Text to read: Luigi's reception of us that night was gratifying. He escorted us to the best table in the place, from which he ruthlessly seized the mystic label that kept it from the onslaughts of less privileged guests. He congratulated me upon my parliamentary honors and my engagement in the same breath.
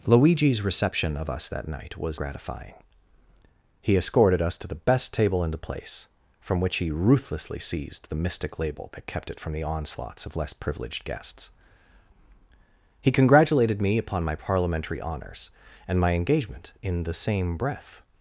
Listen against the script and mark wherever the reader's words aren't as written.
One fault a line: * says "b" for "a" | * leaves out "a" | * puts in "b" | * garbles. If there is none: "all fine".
all fine